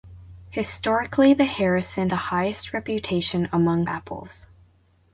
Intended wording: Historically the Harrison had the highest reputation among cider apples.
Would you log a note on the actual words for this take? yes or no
yes